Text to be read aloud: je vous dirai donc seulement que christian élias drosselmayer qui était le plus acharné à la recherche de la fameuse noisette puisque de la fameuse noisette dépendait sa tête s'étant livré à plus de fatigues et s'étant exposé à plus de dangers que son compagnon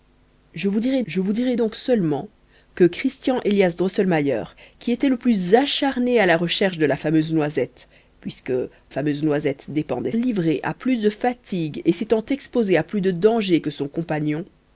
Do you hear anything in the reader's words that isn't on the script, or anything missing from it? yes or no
yes